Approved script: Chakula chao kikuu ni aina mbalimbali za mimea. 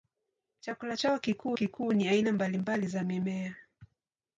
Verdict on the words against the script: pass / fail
fail